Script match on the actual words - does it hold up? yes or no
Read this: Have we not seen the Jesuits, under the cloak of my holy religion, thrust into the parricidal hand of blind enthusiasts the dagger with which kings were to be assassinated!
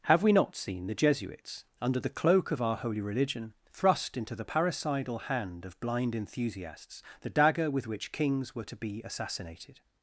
no